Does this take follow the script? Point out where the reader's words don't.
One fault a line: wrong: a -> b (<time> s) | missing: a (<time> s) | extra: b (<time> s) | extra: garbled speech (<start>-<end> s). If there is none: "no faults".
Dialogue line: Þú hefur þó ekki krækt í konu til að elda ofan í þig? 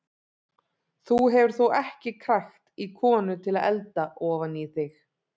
no faults